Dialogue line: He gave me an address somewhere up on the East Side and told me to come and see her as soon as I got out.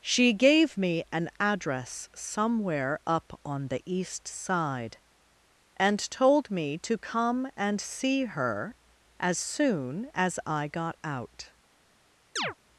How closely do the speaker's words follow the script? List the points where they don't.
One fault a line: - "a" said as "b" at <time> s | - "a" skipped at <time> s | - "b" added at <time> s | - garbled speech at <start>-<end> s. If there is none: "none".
- "He" said as "She" at 0.0 s